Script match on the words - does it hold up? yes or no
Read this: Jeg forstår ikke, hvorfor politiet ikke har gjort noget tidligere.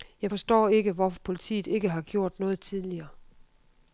yes